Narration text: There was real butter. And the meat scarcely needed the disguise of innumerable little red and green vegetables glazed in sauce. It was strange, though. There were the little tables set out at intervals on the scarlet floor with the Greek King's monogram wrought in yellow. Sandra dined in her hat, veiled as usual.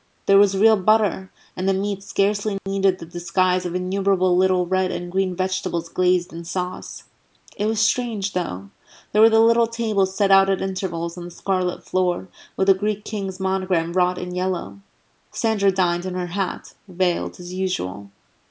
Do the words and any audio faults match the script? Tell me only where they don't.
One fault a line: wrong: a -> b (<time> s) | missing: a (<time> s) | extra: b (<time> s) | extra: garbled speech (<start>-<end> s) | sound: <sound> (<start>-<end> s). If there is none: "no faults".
sound: dropout (2.6-2.7 s)